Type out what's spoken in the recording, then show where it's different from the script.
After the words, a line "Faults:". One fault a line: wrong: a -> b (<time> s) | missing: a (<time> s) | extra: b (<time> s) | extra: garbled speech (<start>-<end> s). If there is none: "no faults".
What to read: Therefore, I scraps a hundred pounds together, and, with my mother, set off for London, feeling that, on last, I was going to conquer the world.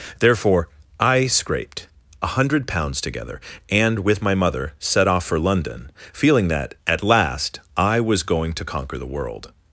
Therefore, I scraped a hundred pounds together, and, with my mother, set off for London, feeling that, at last, I was going to conquer the world.
Faults:
wrong: scraps -> scraped (1.3 s)
wrong: on -> at (6.8 s)